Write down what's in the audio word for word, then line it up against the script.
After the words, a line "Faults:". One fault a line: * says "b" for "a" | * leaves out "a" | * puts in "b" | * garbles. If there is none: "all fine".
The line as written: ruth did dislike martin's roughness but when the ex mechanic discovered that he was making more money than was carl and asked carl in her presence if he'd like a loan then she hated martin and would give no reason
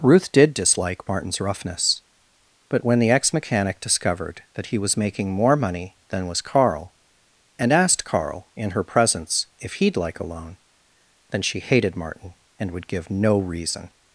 ruth did dislike martin's roughness but when the ex mechanic discovered that he was making more money than was carl and asked carl in her presence if he'd like a loan then she hated martin and would give no reason
Faults:
all fine